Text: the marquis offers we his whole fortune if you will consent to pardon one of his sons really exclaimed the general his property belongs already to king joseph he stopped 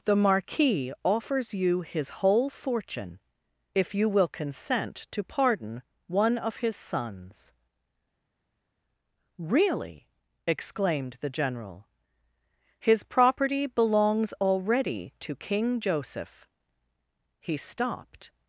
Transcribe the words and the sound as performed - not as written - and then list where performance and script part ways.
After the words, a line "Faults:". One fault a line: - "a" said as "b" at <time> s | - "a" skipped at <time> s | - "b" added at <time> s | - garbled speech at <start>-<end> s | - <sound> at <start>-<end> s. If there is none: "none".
the marquis offers you his whole fortune if you will consent to pardon one of his sons really exclaimed the general his property belongs already to king joseph he stopped
Faults:
- "we" said as "you" at 1.5 s